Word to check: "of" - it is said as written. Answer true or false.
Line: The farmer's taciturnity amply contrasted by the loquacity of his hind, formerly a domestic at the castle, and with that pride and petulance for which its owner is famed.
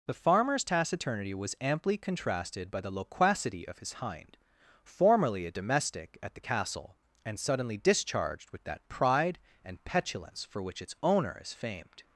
true